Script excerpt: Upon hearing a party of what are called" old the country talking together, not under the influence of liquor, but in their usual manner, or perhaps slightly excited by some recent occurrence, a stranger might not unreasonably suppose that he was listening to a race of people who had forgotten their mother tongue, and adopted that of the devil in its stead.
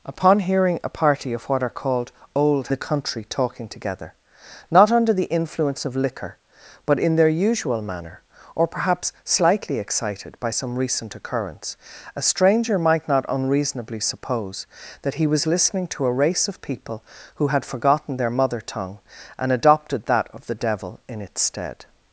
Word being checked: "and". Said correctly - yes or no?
yes